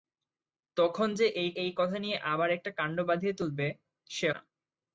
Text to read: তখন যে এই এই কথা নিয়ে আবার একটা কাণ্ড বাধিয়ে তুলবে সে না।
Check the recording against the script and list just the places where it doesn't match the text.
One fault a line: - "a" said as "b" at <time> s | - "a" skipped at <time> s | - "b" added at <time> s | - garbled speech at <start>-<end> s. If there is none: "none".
none